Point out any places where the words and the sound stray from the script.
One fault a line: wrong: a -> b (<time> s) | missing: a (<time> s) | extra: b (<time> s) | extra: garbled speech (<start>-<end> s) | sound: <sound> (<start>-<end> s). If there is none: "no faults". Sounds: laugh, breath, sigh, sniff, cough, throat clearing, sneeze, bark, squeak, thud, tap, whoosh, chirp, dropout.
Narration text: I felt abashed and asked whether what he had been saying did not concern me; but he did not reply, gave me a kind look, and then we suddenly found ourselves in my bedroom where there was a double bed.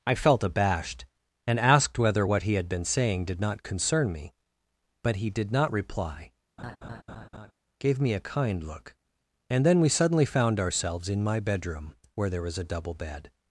sound: laugh (6.6-7.5 s)